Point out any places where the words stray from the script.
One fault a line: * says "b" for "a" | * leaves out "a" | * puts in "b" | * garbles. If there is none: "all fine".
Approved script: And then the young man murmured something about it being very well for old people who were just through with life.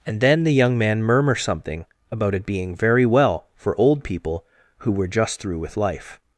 * says "murmur" for "murmured"